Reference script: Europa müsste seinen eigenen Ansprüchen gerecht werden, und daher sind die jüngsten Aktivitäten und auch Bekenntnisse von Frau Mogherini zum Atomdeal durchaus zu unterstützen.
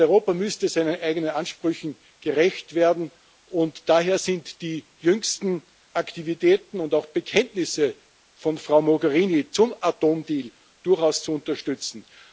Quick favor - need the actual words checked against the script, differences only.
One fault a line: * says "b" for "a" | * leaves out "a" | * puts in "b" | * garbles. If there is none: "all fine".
all fine